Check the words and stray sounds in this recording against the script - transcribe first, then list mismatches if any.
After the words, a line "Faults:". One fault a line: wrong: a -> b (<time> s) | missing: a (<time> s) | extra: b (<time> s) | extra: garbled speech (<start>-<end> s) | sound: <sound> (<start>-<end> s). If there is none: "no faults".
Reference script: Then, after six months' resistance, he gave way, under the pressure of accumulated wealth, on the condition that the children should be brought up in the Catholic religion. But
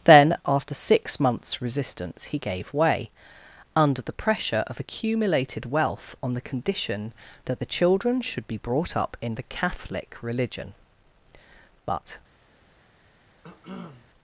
Then, after six months' resistance, he gave way, under the pressure of accumulated wealth, on the condition that the children should be brought up in the Catholic religion. But
Faults:
sound: cough (13.4-14.1 s)